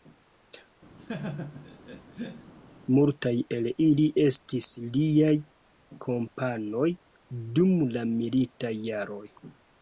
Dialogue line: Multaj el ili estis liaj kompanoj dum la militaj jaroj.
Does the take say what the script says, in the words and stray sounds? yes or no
no